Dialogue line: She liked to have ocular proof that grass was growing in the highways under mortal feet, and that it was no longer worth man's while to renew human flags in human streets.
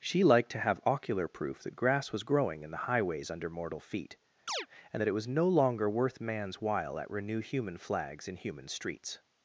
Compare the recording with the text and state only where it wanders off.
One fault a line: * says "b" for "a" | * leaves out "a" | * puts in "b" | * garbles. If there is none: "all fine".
* says "at" for "to"